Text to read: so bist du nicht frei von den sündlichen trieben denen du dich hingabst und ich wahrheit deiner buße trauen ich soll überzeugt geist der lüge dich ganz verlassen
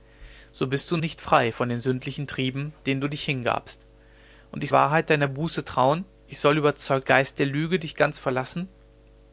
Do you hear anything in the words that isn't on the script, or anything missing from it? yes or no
no